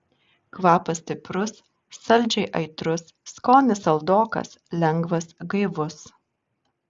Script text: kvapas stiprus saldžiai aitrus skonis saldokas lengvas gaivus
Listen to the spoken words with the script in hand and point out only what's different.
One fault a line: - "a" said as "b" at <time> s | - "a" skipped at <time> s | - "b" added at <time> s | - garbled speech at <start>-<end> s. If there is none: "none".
none